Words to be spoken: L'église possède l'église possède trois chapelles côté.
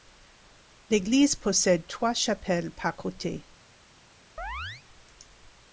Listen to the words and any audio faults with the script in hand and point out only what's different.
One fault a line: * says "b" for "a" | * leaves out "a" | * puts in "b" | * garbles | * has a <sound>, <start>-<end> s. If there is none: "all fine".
* leaves out "l'église possède"
* puts in "par"
* has a chirp, 4.4-4.8 s